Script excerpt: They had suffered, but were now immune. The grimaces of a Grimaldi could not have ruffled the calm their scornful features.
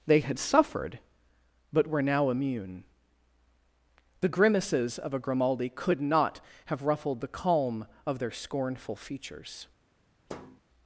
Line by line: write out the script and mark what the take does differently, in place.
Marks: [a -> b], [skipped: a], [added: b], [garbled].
They had suffered, but were now immune. The grimaces of a Grimaldi could not have ruffled the calm [added: of] their scornful features.